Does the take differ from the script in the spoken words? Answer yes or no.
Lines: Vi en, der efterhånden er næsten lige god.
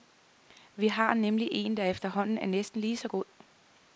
yes